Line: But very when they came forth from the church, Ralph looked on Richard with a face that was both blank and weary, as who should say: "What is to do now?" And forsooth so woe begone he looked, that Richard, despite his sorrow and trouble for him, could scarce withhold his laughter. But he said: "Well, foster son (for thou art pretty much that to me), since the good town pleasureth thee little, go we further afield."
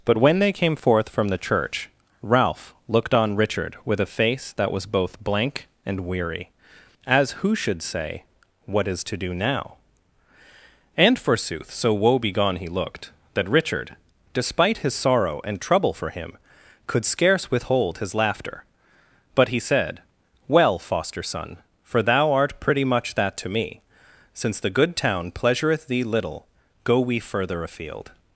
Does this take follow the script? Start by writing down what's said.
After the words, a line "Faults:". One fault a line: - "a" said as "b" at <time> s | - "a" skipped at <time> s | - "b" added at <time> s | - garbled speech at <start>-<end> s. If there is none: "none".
But when they came forth from the church, Ralph looked on Richard with a face that was both blank and weary, as who should say: "What is to do now?" And forsooth so woe begone he looked, that Richard, despite his sorrow and trouble for him, could scarce withhold his laughter. But he said: "Well, foster son (for thou art pretty much that to me), since the good town pleasureth thee little, go we further afield."
Faults:
- "very" skipped at 0.2 s